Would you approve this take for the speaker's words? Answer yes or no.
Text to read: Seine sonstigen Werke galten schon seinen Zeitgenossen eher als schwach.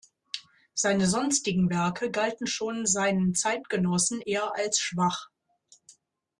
yes